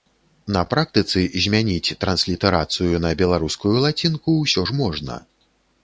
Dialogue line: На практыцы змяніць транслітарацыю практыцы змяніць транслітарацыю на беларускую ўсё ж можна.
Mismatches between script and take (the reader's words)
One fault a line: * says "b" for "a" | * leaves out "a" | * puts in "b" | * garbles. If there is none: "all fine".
* leaves out "практыцы змяніць транслітарацыю"
* puts in "лацінку"